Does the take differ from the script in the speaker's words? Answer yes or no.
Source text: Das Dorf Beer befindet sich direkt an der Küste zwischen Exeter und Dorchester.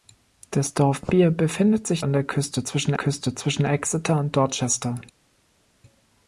yes